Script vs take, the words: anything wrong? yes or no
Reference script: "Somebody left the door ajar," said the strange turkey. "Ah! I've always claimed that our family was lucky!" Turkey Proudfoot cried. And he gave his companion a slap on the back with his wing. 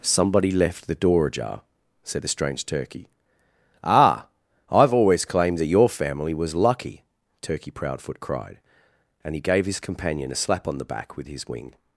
yes